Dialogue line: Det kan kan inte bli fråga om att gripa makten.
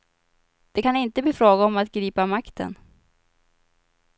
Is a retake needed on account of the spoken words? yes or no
yes